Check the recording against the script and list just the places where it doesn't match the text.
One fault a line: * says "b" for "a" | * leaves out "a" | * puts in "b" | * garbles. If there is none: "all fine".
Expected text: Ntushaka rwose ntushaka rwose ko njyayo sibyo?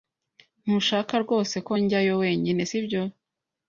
* leaves out "ntushaka rwose"
* puts in "wenyine"